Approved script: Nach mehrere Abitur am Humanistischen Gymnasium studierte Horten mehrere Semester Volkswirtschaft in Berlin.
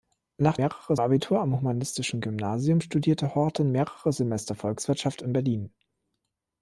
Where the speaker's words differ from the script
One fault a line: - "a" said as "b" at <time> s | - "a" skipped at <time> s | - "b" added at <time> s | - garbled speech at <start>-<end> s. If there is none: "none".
none